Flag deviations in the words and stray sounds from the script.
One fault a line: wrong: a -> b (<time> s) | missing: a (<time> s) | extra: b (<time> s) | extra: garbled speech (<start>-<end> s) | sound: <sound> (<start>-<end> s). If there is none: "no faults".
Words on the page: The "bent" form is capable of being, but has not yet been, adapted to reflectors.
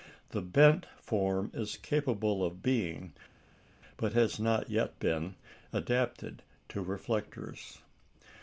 no faults